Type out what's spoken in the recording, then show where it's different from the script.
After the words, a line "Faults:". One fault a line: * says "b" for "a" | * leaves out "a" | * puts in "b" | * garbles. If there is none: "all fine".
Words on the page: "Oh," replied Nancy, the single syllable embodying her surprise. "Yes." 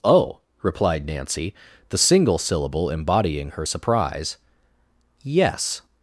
"Oh," replied Nancy, the single syllable embodying her surprise. "Yes."
Faults:
all fine